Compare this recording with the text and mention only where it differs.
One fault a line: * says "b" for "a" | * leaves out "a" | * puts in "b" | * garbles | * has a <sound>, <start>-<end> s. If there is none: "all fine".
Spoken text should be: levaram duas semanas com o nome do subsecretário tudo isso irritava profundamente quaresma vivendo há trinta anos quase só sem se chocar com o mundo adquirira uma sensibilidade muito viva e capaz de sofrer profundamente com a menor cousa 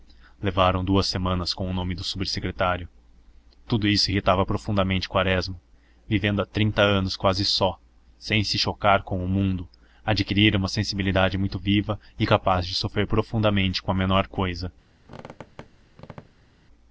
* has a squeak, 15.0-16.5 s